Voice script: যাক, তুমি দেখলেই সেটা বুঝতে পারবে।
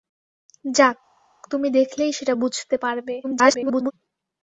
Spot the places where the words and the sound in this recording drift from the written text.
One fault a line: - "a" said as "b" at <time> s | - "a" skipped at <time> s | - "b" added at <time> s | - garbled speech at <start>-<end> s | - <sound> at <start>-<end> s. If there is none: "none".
- garbled speech at 3.2-3.9 s